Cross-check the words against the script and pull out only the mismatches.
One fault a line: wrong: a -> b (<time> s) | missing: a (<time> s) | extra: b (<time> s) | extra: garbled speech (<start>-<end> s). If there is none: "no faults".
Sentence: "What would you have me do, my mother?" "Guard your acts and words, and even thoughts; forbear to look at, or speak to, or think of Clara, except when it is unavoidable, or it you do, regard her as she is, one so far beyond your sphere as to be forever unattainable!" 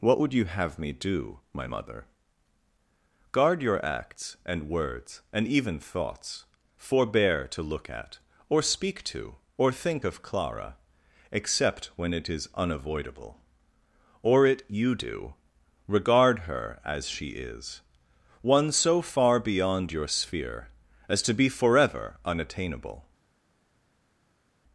no faults